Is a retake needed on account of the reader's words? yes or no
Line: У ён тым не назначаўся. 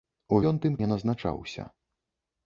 no